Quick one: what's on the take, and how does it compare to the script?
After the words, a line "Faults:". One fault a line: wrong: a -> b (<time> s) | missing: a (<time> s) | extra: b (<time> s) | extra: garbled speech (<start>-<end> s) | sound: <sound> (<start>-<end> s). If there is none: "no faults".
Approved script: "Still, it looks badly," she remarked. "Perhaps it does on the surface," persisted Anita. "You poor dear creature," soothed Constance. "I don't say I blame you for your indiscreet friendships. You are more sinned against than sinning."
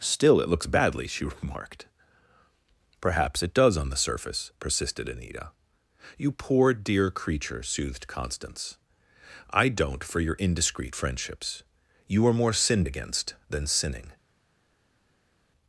"Still, it looks badly," she remarked. "Perhaps it does on the surface," persisted Anita. "You poor dear creature," soothed Constance. "I don't for your indiscreet friendships. You are more sinned against than sinning."
Faults:
missing: say I blame you (10.0 s)